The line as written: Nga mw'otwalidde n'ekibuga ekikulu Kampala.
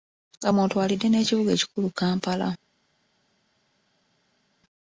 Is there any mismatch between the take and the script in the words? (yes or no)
no